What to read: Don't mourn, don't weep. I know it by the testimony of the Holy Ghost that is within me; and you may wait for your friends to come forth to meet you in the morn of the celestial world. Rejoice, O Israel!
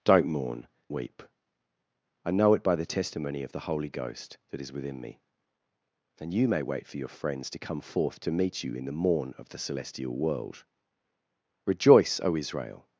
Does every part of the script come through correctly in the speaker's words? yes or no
no